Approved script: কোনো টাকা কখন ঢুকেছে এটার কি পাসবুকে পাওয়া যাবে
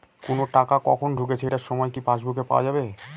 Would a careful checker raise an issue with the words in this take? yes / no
yes